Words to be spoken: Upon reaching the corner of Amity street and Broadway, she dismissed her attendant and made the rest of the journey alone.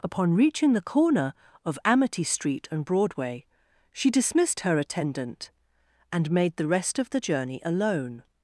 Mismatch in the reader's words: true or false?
false